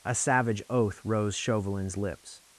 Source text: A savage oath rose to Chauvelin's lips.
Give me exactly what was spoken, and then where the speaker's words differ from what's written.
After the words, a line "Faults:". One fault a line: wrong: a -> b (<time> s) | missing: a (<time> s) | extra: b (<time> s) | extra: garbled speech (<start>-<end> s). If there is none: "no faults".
A savage oath rose Chauvelin's lips.
Faults:
missing: to (1.4 s)